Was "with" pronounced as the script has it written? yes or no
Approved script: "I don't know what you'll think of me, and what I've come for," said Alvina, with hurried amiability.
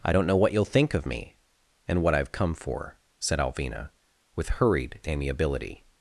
yes